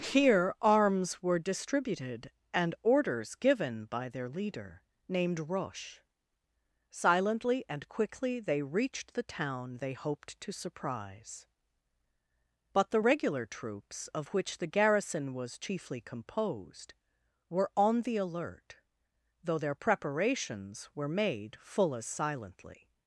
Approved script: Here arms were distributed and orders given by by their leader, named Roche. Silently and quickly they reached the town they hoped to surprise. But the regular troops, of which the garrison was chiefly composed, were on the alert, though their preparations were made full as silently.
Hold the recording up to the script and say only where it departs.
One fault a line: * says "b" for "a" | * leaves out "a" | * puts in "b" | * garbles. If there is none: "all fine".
* leaves out "by"